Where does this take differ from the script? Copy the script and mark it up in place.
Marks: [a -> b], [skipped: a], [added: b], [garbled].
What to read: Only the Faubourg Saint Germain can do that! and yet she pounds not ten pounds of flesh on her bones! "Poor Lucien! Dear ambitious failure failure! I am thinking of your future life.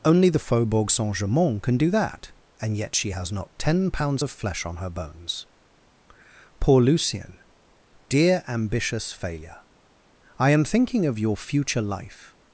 Only the Faubourg Saint Germain can do that! and yet she [pounds -> has] not ten pounds of flesh on her bones! "Poor Lucien! Dear ambitious failure [skipped: failure!] I am thinking of your future life.